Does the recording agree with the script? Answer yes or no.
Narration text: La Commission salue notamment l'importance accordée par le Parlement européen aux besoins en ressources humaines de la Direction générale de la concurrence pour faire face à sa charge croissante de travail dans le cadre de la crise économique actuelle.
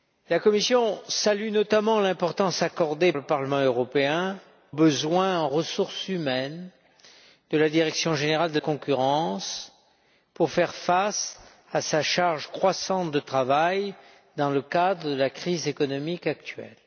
no